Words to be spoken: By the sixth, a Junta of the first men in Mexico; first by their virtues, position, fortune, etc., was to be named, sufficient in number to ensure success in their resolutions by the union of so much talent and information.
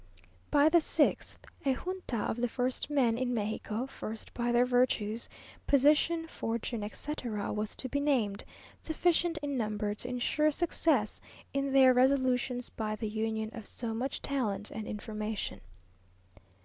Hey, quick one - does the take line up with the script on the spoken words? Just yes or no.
yes